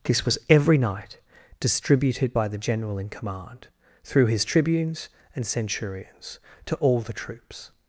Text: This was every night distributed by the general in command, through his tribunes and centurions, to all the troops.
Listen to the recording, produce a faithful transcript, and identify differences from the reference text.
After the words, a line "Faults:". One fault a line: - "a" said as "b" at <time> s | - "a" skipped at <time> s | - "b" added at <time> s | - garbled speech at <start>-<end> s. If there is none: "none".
This was every night distributed by the general in command, through his tribunes and centurions, to all the troops.
Faults:
none